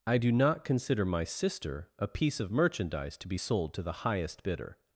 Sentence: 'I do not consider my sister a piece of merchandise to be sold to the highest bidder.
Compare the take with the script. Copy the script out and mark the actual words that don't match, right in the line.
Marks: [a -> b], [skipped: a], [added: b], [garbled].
'I do not consider my sister a piece of merchandise to be sold to the highest bidder.